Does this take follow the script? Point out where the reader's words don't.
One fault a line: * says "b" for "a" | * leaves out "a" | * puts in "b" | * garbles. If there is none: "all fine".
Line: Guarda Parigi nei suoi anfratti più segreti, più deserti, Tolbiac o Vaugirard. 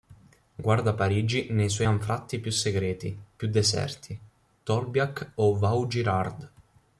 all fine